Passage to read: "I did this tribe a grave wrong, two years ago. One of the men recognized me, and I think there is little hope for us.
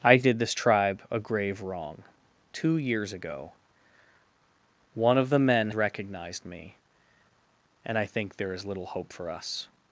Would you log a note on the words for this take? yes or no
no